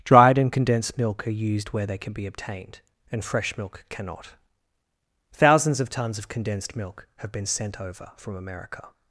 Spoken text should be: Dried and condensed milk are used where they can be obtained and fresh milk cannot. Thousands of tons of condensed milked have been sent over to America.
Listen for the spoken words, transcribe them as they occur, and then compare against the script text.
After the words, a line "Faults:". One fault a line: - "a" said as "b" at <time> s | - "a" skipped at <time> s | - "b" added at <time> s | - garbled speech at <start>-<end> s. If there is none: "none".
Dried and condensed milk are used where they can be obtained and fresh milk cannot. Thousands of tons of condensed milk have been sent over from America.
Faults:
- "milked" said as "milk" at 6.8 s
- "to" said as "from" at 8.2 s